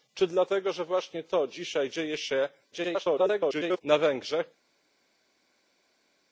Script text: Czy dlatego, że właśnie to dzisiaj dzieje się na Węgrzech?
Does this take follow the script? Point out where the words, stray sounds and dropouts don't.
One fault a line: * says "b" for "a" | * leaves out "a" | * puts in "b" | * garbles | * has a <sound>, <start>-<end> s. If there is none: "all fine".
* garbles